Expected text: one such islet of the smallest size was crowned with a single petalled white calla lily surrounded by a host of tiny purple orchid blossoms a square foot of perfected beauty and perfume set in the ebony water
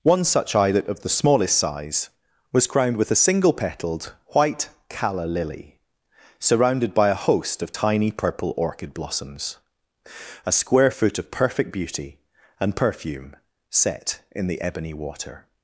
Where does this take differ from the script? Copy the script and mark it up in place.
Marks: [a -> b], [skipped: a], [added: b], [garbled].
one such islet of the smallest size was crowned with a single petalled white calla lily surrounded by a host of tiny purple orchid blossoms a square foot of [perfected -> perfect] beauty and perfume set in the ebony water